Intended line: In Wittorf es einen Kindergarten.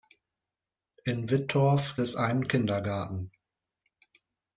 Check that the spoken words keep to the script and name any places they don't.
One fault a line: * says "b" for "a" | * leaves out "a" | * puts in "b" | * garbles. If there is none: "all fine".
all fine